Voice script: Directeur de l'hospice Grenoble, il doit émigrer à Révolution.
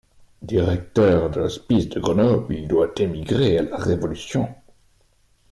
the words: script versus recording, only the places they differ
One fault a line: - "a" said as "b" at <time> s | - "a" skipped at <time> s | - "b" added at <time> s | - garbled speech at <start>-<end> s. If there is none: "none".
- "de" added at 1.9 s
- "la" added at 3.6 s